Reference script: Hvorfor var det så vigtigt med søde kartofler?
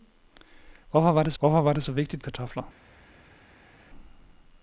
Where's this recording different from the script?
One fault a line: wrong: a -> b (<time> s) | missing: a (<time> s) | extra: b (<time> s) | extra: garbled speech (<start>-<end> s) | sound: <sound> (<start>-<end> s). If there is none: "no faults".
extra: hvorfor var det (1.4 s)
missing: med søde (2.2 s)